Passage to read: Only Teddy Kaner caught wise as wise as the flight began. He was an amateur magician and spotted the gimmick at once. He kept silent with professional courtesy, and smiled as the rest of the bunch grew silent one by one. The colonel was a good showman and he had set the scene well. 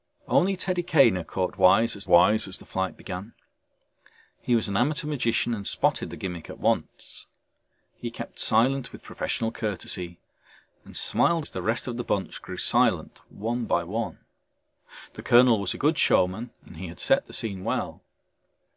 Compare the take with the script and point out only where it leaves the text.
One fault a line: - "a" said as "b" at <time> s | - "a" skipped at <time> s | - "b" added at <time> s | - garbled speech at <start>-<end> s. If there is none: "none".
none